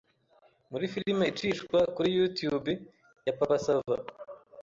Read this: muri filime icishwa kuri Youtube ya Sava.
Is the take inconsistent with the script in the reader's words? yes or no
yes